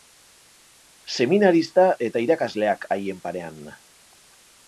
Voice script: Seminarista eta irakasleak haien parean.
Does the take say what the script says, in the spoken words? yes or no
yes